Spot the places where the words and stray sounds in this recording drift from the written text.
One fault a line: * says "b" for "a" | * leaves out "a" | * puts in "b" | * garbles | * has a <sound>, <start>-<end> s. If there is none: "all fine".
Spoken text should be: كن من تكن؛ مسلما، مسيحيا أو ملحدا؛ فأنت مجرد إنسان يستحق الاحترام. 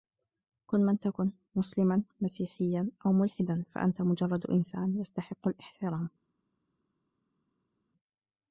all fine